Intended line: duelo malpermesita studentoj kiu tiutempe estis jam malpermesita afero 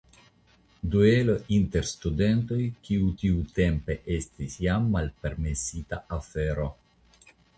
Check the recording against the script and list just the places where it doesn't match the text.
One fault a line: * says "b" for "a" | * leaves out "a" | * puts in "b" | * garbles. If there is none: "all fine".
* says "inter" for "malpermesita"